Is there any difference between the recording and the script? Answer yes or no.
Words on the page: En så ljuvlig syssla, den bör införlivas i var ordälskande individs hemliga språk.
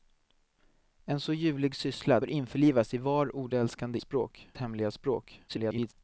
yes